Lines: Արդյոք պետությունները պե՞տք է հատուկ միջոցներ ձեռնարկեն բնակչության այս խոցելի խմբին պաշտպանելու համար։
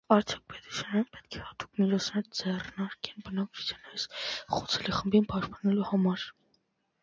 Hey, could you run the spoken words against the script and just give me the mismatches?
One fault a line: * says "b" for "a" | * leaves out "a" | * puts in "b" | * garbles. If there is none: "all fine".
all fine